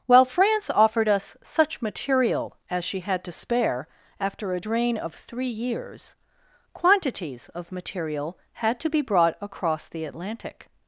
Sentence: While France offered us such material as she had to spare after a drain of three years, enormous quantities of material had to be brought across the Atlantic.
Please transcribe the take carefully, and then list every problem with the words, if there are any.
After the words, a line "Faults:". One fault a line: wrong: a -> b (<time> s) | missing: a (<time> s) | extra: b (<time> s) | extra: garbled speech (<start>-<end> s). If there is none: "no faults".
While France offered us such material as she had to spare after a drain of three years, quantities of material had to be brought across the Atlantic.
Faults:
missing: enormous (6.1 s)